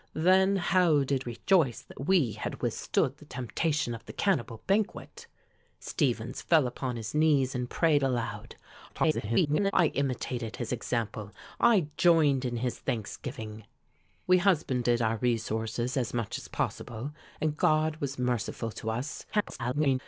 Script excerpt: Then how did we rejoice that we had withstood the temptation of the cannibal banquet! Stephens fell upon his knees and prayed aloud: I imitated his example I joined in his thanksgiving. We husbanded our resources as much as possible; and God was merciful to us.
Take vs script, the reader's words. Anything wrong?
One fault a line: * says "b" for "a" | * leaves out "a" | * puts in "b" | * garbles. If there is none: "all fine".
* leaves out "we"
* garbles
* garbles